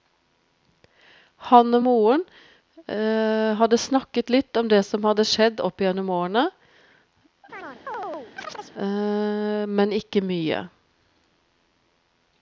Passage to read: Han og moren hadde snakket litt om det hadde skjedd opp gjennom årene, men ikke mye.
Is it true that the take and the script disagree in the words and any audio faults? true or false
true